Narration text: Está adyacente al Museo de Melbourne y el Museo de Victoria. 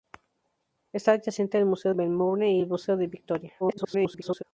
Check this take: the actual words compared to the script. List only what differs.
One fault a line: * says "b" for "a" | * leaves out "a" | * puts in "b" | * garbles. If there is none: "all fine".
* leaves out "de"
* garbles